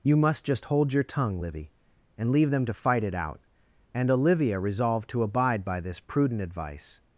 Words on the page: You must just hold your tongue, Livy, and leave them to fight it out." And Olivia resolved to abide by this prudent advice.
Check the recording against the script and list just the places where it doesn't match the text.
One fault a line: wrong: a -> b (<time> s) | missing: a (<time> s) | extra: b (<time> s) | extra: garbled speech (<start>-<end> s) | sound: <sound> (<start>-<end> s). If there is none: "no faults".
no faults